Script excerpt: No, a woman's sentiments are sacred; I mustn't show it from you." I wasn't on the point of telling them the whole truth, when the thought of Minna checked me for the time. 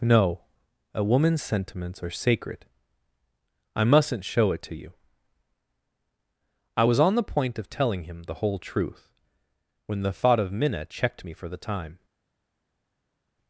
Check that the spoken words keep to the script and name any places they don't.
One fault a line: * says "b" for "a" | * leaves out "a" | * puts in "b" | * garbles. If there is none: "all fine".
* says "to" for "from"
* says "was" for "wasn't"
* says "him" for "them"